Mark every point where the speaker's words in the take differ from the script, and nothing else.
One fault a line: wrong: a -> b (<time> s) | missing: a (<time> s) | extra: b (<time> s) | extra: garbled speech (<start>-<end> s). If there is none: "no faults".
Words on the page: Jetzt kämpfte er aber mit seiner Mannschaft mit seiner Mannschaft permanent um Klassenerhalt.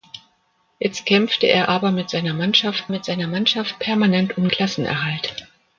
no faults